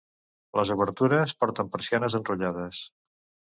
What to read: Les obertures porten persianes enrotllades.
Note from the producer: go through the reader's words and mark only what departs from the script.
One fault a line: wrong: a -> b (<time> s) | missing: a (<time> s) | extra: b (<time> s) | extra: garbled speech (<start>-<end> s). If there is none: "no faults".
no faults